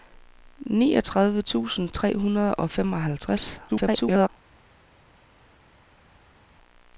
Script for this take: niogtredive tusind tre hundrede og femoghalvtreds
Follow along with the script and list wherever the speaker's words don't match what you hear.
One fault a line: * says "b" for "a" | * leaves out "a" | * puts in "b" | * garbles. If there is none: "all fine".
* garbles